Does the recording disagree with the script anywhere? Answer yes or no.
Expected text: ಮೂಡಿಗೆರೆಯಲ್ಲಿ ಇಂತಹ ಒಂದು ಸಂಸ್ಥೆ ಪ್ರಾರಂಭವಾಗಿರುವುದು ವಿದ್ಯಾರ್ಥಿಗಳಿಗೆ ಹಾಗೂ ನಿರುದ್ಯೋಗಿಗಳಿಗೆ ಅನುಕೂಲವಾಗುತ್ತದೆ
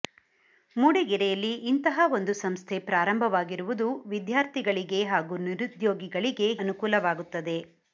no